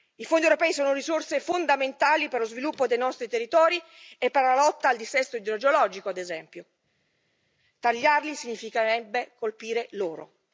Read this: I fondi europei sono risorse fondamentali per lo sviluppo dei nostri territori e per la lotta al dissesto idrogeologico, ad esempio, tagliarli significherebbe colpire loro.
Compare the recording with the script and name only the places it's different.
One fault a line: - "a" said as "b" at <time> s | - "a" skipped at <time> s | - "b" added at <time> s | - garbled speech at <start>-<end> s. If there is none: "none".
none